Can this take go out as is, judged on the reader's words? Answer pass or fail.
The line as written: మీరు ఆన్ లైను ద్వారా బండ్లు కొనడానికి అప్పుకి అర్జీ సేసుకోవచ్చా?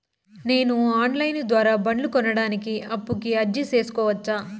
fail